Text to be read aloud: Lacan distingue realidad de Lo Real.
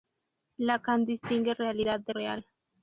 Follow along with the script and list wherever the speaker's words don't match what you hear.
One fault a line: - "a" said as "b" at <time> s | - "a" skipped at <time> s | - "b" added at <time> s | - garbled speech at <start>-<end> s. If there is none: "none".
- "Lo" skipped at 2.1 s